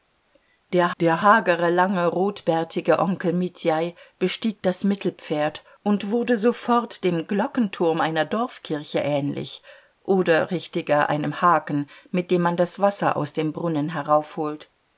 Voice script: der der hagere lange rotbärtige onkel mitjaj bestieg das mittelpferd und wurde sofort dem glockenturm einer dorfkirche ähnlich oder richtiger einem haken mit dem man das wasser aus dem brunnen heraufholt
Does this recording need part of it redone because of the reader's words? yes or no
no